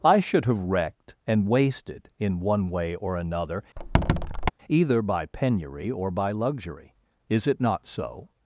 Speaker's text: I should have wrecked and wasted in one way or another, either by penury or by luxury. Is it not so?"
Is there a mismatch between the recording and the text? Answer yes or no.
no